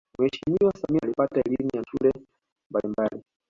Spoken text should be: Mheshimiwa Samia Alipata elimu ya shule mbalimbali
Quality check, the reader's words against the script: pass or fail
pass